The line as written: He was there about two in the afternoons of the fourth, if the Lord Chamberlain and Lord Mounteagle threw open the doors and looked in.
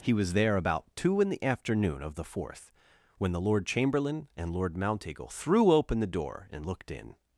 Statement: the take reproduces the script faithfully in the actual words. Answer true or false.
false